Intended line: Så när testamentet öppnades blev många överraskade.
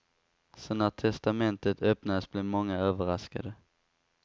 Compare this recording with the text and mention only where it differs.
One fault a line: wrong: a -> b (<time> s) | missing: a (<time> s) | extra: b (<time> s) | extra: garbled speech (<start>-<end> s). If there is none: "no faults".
no faults